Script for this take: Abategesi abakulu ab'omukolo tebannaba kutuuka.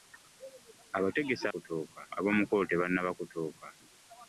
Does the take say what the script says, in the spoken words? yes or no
no